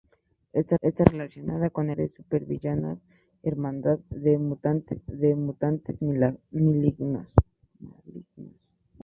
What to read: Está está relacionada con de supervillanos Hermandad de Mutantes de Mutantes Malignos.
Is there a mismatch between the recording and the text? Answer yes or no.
no